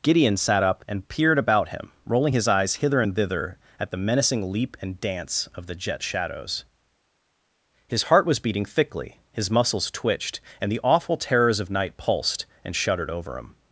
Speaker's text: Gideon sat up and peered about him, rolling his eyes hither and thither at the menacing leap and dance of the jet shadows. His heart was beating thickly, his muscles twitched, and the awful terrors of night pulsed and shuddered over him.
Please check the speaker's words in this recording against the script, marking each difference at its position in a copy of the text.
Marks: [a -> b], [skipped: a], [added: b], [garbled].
Gideon sat up and peered about him, rolling his eyes hither and thither at the menacing leap and dance of the jet shadows. His heart was beating thickly, his muscles twitched, and the awful terrors of night pulsed and shuddered over him.